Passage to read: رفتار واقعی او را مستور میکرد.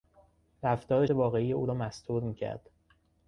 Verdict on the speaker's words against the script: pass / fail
pass